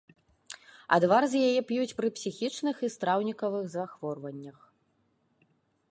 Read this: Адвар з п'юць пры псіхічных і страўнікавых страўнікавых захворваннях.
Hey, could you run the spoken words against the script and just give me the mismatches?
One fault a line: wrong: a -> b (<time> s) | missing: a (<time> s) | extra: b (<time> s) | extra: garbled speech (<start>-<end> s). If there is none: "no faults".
extra: яе (1.5 s)
missing: страўнікавых (3.6 s)